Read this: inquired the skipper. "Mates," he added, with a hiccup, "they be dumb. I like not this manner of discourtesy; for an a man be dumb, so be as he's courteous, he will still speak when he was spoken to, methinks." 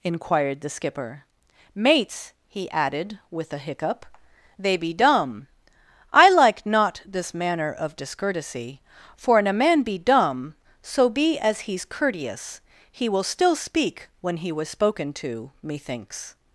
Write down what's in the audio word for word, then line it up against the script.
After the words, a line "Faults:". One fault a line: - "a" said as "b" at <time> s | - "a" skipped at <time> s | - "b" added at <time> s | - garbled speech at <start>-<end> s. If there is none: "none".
inquired the skipper. "Mates," he added, with a hiccup, "they be dumb. I like not this manner of discourtesy; for an a man be dumb, so be as he's courteous, he will still speak when he was spoken to, methinks."
Faults:
none